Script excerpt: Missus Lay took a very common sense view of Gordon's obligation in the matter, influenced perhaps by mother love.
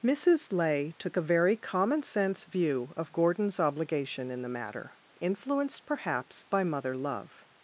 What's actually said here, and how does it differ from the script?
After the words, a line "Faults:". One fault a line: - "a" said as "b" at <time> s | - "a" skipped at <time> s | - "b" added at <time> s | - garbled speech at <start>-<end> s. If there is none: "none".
Missus Lay took a very common sense view of Gordon's obligation in the matter, influenced perhaps by mother love.
Faults:
none